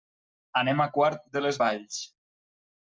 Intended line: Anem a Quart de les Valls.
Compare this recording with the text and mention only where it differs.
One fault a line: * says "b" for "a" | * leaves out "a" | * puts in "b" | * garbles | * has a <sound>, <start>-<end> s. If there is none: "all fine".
all fine